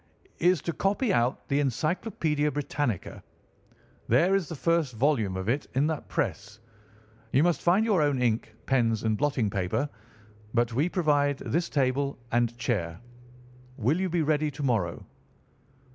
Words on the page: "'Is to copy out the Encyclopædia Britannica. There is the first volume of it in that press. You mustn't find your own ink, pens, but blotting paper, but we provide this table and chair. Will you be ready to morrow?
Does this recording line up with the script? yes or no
no